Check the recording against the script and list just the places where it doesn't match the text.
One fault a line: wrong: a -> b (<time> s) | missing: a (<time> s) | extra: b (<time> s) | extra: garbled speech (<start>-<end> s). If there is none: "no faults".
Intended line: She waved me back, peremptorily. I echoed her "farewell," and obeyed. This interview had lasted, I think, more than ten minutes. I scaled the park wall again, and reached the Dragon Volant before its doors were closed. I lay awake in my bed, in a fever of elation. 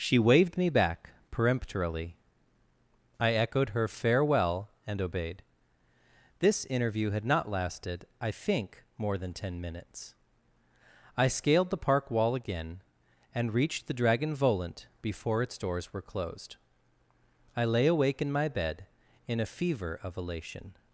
extra: not (7.2 s)